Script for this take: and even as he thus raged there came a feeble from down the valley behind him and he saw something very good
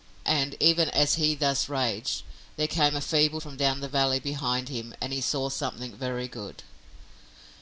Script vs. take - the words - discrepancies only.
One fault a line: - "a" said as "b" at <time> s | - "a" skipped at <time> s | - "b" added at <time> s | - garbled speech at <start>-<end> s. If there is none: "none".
none